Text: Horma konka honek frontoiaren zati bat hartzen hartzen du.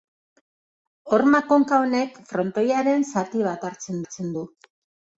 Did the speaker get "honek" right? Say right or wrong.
right